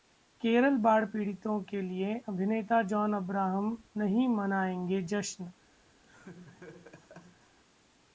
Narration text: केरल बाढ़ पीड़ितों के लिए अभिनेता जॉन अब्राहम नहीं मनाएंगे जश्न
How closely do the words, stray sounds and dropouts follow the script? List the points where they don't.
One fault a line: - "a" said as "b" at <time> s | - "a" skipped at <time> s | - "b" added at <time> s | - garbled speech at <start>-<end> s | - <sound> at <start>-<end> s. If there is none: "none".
- laugh at 6.0-7.6 s